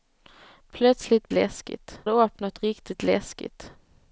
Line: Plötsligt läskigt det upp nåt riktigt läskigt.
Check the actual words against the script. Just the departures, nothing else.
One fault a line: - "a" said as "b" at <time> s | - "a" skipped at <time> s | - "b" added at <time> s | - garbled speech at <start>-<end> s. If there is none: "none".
none